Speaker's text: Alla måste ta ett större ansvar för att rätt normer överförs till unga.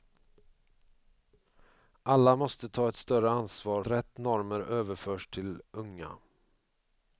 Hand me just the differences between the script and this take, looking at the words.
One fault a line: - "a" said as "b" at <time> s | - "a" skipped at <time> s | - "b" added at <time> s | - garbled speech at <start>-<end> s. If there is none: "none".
- "för att" skipped at 3.8 s